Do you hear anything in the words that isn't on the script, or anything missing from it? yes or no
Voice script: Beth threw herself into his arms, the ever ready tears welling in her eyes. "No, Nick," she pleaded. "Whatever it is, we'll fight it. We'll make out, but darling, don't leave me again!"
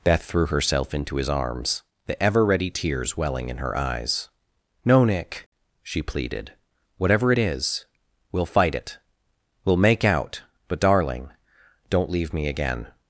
no